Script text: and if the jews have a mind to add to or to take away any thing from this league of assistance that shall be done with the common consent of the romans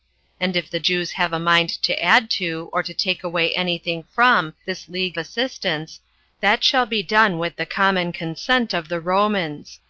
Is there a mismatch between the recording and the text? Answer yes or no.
yes